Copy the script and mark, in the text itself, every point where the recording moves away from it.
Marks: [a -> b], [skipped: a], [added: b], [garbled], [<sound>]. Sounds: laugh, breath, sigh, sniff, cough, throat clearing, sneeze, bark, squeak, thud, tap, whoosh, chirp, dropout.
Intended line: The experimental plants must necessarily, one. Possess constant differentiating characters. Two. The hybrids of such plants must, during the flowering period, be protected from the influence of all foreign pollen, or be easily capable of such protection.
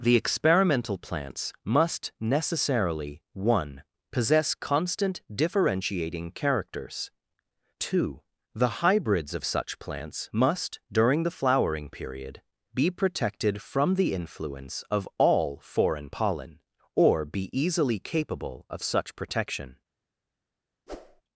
The experimental plants must necessarily, one. Possess constant differentiating characters. Two. The hybrids of such plants must, during the flowering period, be protected from the influence of all foreign pollen, or be easily capable of such protection. [whoosh]